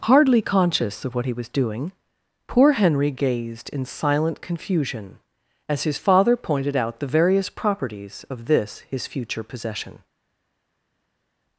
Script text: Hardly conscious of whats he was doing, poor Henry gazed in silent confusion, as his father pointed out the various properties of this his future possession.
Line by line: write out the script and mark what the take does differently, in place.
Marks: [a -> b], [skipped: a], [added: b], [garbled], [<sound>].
Hardly conscious of [whats -> what] he was doing, poor Henry gazed in silent confusion, as his father pointed out the various properties of this his future possession.